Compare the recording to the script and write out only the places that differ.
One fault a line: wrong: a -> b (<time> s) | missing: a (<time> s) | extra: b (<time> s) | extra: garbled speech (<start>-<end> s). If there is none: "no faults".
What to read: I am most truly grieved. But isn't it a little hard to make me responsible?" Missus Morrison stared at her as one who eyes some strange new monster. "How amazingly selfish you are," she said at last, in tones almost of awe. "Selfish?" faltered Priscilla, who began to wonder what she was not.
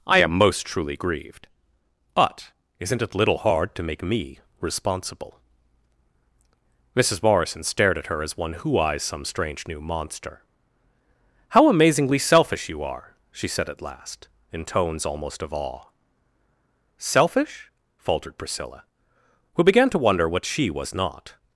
missing: a (3.1 s)